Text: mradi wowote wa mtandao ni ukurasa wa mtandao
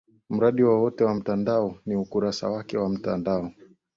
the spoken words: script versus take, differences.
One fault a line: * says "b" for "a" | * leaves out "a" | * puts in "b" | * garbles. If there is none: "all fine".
* puts in "wake"